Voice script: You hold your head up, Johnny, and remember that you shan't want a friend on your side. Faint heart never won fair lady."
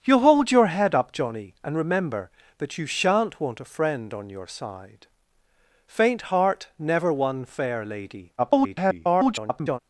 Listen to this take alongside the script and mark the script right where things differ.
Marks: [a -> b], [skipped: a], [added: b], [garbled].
You hold your head up, Johnny, and remember that you shan't want a friend on your side. Faint heart never won fair lady." [garbled]